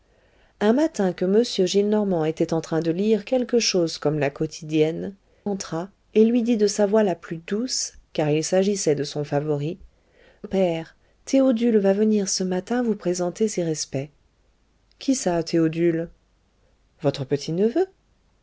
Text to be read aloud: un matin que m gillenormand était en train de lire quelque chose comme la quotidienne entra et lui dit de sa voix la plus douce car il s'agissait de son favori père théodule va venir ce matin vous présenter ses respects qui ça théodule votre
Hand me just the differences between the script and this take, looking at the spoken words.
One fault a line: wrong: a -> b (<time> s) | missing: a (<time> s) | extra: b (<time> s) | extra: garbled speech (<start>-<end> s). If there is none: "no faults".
no faults